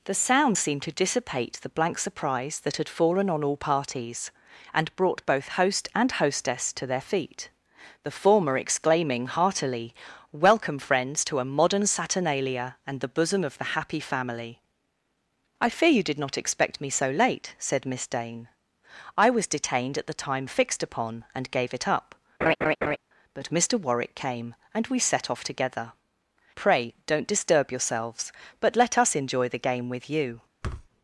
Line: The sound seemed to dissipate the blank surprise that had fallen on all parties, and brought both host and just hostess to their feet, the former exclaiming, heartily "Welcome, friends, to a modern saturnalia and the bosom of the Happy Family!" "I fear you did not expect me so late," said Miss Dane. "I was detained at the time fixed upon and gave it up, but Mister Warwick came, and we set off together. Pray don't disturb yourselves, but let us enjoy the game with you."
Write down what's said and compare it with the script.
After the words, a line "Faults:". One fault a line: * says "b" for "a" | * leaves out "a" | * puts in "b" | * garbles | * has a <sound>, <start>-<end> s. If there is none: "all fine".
The sound seemed to dissipate the blank surprise that had fallen on all parties, and brought both host and hostess to their feet, the former exclaiming, heartily "Welcome, friends, to a modern saturnalia and the bosom of the Happy Family!" "I fear you did not expect me so late," said Miss Dane. "I was detained at the time fixed upon and gave it up, but Mister Warwick came, and we set off together. Pray don't disturb yourselves, but let us enjoy the game with you."
Faults:
* leaves out "just"
* has a laugh, 22.4-23.0 s
* has a thud, 30.6-30.9 s